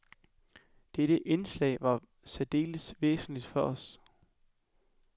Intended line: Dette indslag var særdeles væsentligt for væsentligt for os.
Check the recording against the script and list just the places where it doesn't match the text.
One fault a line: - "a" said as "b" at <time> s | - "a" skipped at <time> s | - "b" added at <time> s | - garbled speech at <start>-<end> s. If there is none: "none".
- "væsentligt for" skipped at 3.6 s